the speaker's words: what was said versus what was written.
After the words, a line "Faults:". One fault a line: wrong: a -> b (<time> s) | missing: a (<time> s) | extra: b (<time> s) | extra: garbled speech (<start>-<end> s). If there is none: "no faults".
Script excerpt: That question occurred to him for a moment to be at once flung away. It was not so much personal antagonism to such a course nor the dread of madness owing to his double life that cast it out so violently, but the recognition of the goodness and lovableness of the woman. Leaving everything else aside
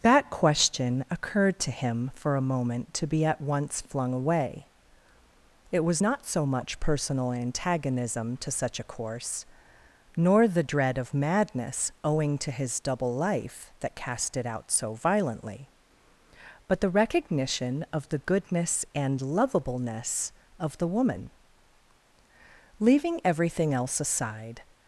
That question occurred to him for a moment to be at once flung away. It was not so much personal antagonism to such a course nor the dread of madness owing to his double life that cast it out so violently, but the recognition of the goodness and lovableness of the woman. Leaving everything else aside
Faults:
no faults